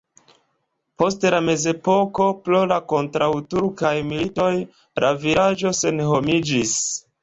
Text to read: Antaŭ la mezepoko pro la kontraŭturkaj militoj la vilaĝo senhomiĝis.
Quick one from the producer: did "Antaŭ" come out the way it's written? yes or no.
no